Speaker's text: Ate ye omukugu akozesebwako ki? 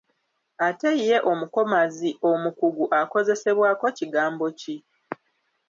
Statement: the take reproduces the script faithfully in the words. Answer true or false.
false